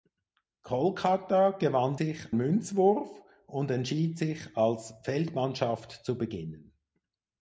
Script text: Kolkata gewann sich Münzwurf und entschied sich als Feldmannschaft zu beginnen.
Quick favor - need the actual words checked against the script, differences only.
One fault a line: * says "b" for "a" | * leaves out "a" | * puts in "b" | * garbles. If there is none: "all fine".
all fine